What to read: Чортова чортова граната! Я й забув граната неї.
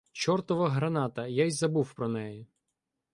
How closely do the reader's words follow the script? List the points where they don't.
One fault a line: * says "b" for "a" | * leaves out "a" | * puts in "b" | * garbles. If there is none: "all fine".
* leaves out "чортова"
* says "про" for "граната"